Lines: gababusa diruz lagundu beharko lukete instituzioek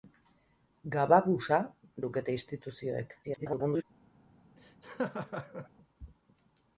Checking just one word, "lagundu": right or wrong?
wrong